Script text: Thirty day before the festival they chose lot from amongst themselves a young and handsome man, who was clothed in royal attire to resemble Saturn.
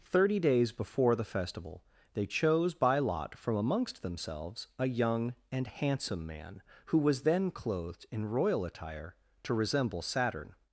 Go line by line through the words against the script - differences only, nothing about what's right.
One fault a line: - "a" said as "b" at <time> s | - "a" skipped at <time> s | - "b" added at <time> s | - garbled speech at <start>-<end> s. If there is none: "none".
- "day" said as "days" at 0.4 s
- "by" added at 2.7 s
- "then" added at 7.2 s